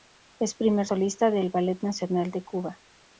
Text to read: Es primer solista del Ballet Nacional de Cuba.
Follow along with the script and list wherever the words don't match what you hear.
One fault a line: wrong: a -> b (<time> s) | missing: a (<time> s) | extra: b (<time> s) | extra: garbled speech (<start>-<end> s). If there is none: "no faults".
no faults